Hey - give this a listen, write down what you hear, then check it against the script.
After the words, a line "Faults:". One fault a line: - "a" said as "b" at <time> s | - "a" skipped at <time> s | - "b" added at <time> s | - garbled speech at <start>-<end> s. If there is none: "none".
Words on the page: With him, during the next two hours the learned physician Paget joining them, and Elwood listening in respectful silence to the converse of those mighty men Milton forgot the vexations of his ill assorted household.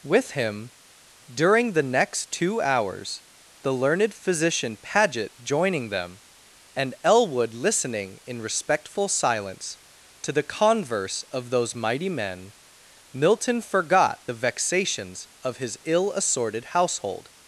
With him, during the next two hours the learned physician Paget joining them, and Elwood listening in respectful silence to the converse of those mighty men Milton forgot the vexations of his ill assorted household.
Faults:
none